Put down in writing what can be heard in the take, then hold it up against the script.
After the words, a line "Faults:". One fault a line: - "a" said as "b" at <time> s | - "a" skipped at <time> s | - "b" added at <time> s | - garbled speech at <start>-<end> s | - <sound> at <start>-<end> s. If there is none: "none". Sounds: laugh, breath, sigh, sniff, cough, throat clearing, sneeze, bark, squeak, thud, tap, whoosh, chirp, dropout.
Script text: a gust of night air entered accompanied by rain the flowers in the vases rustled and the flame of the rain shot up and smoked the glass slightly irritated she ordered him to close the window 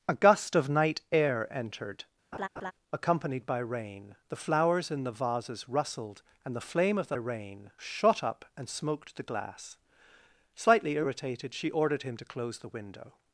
a gust of night air entered accompanied by rain the flowers in the vases rustled and the flame of the rain shot up and smoked the glass slightly irritated she ordered him to close the window
Faults:
- laugh at 2.3-2.7 s